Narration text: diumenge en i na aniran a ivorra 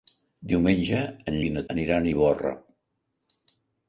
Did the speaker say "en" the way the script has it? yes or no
yes